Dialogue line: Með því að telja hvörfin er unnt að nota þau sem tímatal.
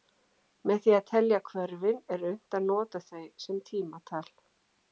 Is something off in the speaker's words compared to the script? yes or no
no